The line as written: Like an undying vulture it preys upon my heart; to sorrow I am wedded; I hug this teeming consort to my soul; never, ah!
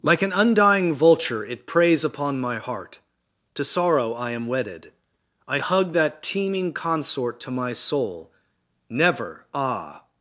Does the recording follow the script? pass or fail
fail